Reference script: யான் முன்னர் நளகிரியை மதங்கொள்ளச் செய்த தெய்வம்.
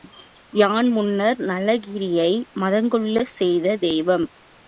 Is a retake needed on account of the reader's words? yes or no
no